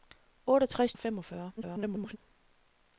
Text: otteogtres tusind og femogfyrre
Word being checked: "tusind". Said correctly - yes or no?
no